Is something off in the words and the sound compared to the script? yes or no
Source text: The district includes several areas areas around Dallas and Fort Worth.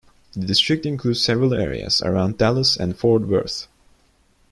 yes